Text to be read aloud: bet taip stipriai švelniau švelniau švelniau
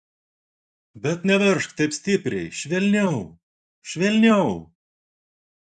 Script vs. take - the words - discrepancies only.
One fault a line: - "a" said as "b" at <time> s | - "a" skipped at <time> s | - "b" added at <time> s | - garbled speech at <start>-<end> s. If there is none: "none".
- "neveržk" added at 1.3 s
- "švelniau" skipped at 4.5 s